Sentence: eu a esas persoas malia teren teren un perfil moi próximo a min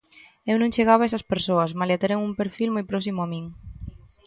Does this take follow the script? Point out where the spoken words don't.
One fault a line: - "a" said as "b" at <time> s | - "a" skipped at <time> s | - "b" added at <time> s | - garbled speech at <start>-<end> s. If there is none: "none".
- "non chegaba" added at 0.6 s
- "teren" skipped at 2.2 s